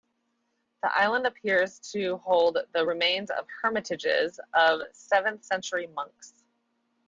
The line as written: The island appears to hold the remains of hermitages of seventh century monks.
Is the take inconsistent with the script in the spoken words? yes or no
no